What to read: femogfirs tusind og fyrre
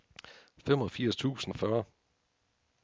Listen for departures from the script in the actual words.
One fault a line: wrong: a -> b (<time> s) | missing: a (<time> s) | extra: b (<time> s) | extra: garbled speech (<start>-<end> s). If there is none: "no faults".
no faults